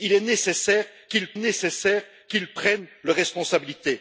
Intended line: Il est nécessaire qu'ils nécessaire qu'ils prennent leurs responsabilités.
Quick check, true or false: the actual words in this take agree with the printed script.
true